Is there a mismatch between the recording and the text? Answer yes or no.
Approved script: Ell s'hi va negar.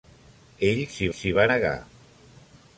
yes